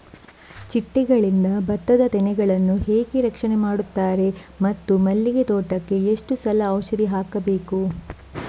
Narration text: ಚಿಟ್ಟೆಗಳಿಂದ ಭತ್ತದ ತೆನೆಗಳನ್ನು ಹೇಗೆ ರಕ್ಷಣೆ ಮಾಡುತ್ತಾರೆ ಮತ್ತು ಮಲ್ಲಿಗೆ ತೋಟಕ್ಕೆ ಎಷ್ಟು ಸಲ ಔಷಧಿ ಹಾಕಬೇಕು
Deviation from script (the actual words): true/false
false